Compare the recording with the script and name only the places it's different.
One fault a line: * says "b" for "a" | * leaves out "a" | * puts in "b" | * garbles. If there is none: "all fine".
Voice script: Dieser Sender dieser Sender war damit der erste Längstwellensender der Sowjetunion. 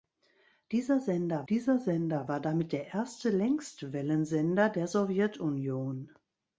all fine